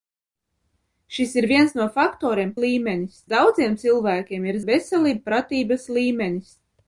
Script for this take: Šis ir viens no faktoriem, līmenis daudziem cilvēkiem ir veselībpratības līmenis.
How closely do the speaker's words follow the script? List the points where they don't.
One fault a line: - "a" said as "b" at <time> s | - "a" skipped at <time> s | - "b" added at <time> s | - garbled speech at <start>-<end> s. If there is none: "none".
none